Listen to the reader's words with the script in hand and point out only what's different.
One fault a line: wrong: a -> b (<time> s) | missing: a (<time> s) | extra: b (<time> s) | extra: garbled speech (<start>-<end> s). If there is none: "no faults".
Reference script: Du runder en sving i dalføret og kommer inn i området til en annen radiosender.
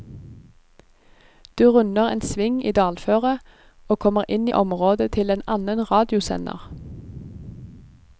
no faults